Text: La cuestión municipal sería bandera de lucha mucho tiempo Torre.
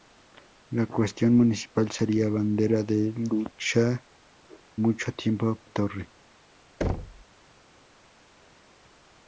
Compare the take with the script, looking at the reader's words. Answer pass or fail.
pass